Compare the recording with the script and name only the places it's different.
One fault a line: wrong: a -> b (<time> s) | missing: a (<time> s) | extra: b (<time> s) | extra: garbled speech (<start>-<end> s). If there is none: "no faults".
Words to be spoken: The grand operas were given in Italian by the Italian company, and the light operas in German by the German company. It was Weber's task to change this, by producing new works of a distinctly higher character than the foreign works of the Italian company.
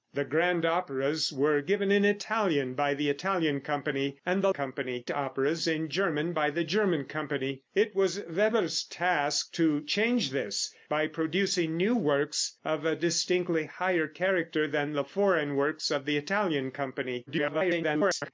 wrong: light -> company (4.5 s)
extra: garbled speech (17.3-18.3 s)